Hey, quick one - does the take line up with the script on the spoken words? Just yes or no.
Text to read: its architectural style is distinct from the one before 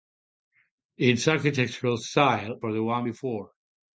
no